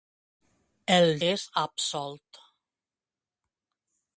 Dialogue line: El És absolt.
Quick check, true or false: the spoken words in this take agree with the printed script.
true